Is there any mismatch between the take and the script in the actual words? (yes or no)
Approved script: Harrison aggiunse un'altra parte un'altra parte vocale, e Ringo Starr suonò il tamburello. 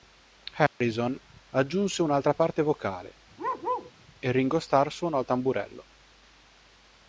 yes